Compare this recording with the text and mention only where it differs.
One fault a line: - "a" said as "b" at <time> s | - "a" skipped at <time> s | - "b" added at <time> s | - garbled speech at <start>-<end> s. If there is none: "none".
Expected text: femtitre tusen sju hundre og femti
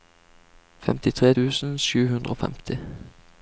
none